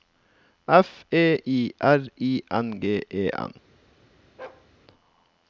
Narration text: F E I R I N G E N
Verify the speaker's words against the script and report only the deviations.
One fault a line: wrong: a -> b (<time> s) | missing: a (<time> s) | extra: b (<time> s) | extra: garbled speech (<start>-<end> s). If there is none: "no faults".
no faults